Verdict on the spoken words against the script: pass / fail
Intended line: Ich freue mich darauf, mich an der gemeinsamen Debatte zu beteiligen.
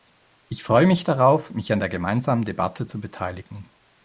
pass